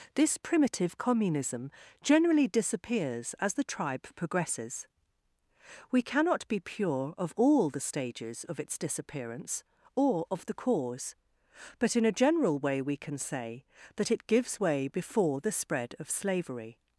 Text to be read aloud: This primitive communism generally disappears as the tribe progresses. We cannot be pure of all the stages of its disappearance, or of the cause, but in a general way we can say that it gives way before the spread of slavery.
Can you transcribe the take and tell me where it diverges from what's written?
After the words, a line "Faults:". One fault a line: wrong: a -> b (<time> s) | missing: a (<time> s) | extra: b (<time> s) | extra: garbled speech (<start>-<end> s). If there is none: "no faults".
This primitive communism generally disappears as the tribe progresses. We cannot be pure of all the stages of its disappearance, or of the cause, but in a general way we can say that it gives way before the spread of slavery.
Faults:
no faults